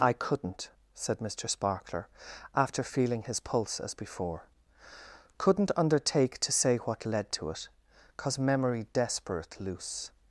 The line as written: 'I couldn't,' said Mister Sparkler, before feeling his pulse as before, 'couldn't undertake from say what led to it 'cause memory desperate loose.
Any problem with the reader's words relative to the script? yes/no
yes